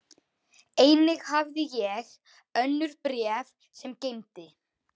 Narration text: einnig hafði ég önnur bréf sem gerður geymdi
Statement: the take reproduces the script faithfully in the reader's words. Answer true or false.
false